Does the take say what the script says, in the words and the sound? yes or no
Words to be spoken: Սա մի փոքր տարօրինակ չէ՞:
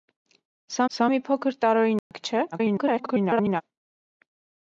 no